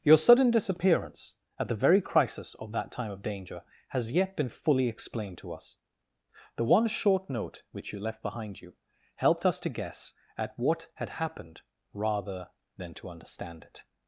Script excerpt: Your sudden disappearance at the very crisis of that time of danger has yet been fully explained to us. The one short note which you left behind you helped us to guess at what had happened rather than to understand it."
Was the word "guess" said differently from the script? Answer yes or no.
no